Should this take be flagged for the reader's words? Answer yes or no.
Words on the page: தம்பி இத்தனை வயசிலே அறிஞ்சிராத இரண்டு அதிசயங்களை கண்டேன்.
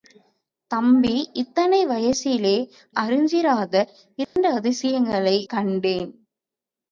no